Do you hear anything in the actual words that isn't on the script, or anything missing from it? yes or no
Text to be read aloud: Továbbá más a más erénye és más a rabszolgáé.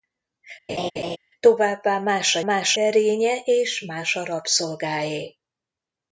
no